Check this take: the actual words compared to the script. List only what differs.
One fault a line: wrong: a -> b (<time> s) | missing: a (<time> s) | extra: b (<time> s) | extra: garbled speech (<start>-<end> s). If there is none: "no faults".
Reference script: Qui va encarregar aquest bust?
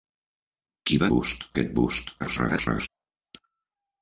wrong: encarregar -> bust (1.1 s)
extra: garbled speech (2.2-2.9 s)